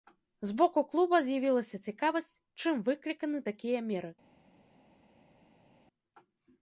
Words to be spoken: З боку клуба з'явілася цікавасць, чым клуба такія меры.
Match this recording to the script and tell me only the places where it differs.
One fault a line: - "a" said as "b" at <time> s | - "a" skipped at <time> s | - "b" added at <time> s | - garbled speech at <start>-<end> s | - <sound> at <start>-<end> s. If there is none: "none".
- "клуба" said as "выкліканы" at 2.9 s